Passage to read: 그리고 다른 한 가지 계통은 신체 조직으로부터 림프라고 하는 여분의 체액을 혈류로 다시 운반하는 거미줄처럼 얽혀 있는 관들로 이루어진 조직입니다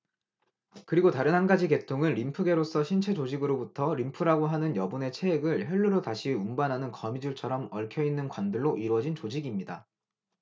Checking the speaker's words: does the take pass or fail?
fail